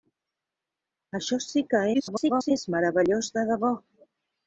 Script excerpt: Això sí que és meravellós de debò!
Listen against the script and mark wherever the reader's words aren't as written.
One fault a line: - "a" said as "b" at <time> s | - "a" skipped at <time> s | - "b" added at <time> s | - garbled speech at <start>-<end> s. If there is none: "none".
- garbled speech at 1.9-2.5 s